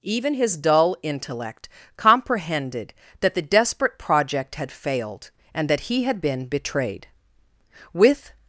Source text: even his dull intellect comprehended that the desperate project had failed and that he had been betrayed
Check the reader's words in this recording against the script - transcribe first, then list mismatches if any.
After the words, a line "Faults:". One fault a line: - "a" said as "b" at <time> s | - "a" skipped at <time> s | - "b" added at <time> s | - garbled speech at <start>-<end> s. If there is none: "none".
even his dull intellect comprehended that the desperate project had failed and that he had been betrayed with
Faults:
- "with" added at 7.9 s